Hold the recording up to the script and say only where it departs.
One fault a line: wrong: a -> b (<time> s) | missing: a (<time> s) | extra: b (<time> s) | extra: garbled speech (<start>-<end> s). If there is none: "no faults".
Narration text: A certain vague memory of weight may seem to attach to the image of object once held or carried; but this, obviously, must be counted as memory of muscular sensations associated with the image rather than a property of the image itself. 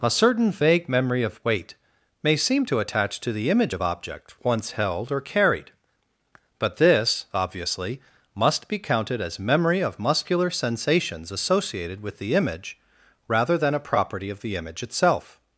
no faults